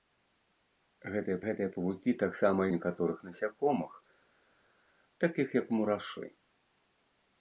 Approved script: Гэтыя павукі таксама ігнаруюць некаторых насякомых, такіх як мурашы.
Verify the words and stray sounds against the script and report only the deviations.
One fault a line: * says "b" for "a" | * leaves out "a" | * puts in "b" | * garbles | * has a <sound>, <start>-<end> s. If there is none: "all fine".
* puts in "гэтыя"
* leaves out "ігнаруюць"